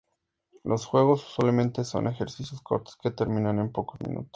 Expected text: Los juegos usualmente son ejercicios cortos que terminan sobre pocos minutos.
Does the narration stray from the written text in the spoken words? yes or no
yes